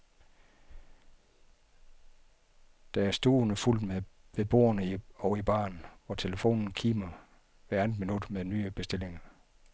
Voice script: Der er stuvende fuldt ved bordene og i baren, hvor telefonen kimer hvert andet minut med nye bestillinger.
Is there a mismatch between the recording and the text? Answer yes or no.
no